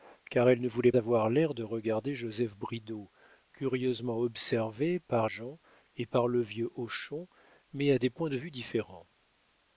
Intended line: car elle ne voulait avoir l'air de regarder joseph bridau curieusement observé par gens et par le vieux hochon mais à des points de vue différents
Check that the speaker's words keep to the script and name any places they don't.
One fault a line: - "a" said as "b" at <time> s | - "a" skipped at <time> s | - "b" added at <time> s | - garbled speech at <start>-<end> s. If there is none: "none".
none